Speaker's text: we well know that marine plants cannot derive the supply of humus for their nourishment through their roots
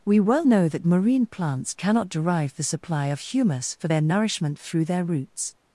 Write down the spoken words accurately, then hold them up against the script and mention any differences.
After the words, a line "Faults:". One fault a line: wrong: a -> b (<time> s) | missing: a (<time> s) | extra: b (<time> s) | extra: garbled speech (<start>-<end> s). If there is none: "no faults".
we well know that marine plants cannot derive the supply of humus for their nourishment through their roots
Faults:
no faults